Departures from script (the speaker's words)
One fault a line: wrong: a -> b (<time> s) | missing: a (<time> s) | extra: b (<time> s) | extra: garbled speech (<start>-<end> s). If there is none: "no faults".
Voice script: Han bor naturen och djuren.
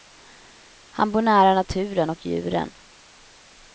extra: nära (1.2 s)